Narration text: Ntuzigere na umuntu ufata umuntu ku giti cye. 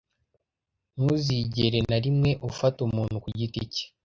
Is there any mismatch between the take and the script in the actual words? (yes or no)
yes